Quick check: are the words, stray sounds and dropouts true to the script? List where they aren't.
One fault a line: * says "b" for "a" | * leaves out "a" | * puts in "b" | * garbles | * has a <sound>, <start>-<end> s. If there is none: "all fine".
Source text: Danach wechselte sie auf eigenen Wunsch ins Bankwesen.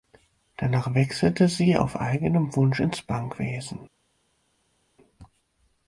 all fine